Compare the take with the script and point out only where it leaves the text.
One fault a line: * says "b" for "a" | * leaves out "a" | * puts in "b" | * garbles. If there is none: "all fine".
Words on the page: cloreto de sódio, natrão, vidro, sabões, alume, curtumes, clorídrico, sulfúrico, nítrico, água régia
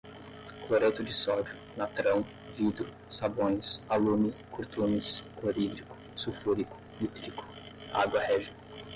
all fine